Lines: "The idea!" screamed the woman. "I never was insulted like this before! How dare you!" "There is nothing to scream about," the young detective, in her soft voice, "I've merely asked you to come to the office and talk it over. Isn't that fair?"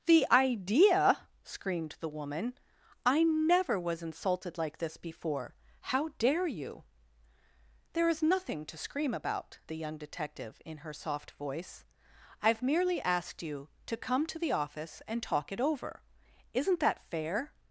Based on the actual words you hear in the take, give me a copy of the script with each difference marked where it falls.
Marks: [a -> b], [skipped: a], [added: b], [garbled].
"The idea!" screamed the woman. "I never was insulted like this before! How dare you!" "There is nothing to scream about," the young detective, in her soft voice, "I've merely asked you to come to the office and talk it over. Isn't that fair?"